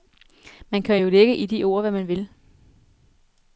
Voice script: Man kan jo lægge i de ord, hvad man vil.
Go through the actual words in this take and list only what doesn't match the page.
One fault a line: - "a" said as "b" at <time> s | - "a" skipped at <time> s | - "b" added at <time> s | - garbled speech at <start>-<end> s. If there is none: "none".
none